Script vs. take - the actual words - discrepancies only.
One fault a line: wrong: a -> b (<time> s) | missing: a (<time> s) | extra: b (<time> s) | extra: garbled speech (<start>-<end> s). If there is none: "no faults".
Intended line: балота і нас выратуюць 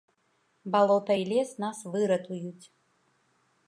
extra: лес (1.3 s)